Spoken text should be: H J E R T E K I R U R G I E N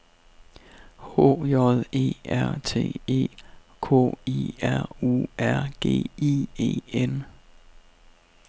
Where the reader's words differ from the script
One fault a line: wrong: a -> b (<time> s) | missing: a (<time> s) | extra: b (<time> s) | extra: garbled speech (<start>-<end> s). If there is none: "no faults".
no faults